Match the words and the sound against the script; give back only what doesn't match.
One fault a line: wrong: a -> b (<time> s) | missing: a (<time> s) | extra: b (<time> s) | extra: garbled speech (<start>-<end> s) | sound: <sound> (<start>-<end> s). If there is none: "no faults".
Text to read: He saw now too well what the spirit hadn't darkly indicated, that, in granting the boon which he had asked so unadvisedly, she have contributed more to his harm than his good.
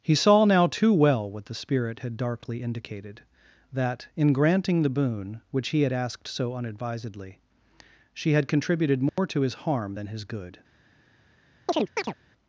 wrong: hadn't -> had (2.0 s)
wrong: have -> had (8.3 s)
sound: dropout (9.1-9.2 s)
sound: chirp (11.7-12.1 s)